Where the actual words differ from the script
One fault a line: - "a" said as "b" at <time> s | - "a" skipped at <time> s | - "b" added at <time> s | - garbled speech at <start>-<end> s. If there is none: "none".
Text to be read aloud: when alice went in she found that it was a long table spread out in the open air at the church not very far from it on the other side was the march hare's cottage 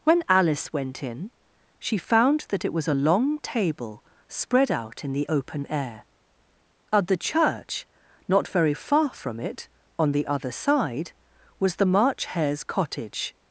none